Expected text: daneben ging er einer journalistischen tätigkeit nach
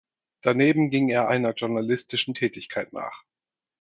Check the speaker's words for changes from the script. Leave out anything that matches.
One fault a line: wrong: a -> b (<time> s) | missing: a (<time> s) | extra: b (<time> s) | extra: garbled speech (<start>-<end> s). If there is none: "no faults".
no faults